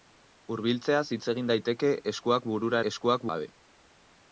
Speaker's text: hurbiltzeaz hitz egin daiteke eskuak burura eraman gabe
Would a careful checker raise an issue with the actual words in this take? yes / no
yes